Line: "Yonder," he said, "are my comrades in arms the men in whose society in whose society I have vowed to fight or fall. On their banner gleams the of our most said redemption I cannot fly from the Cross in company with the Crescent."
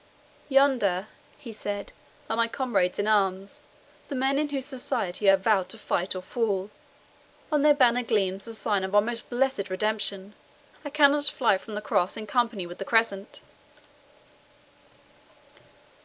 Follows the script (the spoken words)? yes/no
no